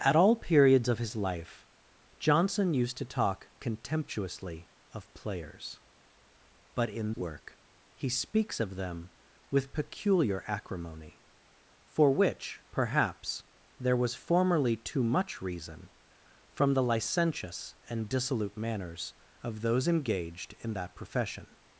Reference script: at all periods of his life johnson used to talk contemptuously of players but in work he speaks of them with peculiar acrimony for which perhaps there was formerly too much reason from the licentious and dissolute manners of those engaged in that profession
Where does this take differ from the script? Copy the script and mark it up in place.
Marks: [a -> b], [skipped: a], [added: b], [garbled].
at all periods of his life johnson used to talk contemptuously of players but in work he speaks of them with peculiar acrimony for which perhaps there was formerly too much reason from the licentious and dissolute manners of those engaged in that profession